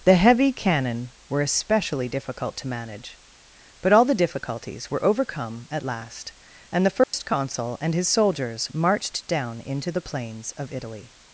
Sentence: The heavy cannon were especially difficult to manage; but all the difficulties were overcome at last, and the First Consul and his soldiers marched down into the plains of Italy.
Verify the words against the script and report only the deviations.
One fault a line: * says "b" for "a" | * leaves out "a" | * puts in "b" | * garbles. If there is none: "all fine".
all fine